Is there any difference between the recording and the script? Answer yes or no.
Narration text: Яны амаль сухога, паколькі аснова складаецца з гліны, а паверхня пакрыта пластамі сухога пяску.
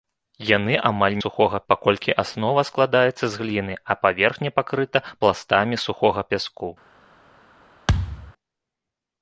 no